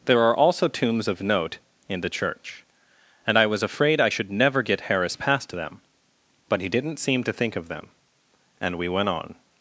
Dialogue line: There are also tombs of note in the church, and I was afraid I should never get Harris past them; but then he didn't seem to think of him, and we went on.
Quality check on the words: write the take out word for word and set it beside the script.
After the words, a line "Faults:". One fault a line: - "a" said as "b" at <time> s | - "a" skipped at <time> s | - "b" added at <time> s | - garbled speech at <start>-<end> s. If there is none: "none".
There are also tombs of note in the church, and I was afraid I should never get Harris past them; but he didn't seem to think of them, and we went on.
Faults:
- "then" skipped at 6.6 s
- "him" said as "them" at 7.7 s